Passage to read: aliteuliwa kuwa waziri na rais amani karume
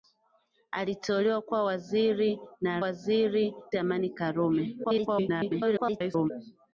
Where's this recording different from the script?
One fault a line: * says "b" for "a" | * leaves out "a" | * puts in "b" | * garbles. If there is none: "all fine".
* says "waziri" for "rais"
* garbles